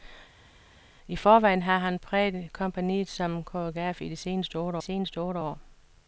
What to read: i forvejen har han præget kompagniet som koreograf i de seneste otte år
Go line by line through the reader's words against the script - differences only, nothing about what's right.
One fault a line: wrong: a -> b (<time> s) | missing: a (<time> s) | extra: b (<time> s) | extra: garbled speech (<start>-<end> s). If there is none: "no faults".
extra: seneste otte (4.8 s)